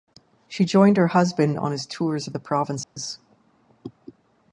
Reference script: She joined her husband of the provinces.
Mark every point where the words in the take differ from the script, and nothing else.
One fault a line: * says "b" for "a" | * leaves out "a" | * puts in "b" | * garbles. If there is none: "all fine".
* puts in "on his tours"